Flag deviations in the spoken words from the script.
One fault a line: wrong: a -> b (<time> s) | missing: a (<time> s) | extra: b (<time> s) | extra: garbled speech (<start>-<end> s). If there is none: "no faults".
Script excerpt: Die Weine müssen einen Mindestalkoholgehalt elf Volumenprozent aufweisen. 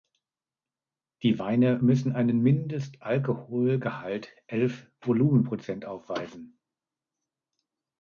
no faults